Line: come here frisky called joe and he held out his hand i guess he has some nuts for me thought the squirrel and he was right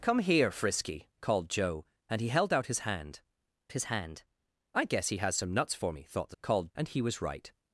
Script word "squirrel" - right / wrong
wrong